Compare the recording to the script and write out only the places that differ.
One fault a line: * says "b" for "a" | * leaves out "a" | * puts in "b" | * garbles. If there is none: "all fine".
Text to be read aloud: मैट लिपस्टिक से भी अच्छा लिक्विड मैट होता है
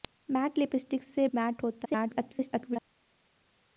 * leaves out "भी अच्छा लिक्विड"
* garbles